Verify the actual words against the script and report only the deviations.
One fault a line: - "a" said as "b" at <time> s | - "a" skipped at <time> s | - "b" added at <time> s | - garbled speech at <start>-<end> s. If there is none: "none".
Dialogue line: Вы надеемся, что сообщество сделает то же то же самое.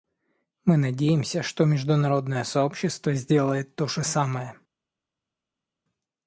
- "Вы" said as "Мы" at 0.7 s
- "международное" added at 1.6 s
- "то же" skipped at 4.0 s